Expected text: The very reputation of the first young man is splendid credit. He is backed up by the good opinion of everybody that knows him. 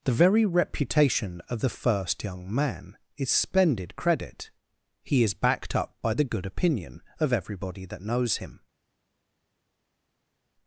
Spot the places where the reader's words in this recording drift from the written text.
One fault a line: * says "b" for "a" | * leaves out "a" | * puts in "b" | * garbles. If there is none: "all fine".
all fine